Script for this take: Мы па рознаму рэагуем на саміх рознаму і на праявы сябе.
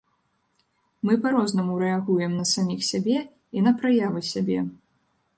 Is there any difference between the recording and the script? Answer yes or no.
yes